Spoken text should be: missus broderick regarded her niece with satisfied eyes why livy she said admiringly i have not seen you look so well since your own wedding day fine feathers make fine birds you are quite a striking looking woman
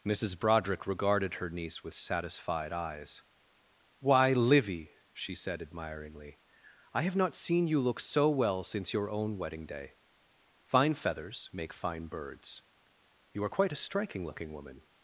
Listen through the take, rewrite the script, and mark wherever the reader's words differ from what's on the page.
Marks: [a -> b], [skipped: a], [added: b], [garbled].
missus broderick regarded her niece with satisfied eyes why livy she said admiringly i have not seen you look so well since your own wedding day fine feathers make fine birds you are quite a striking looking woman